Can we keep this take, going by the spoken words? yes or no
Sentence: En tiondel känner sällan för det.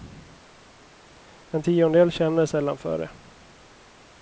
yes